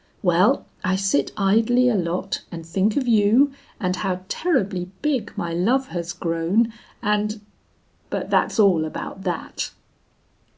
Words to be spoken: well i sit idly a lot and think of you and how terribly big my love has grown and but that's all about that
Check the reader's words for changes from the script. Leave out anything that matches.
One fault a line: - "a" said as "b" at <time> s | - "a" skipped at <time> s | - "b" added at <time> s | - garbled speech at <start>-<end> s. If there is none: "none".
none